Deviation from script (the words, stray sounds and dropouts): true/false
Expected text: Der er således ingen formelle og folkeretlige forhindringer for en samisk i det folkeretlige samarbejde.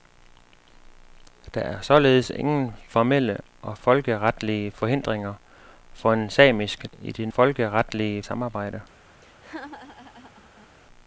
true